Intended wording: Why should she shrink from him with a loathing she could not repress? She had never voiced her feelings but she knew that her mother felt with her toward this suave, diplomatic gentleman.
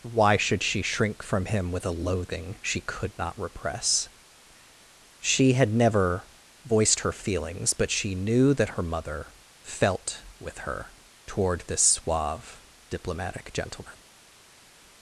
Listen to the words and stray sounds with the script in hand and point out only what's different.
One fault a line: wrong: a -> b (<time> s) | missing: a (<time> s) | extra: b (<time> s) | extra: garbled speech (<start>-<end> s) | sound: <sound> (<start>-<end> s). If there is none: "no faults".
no faults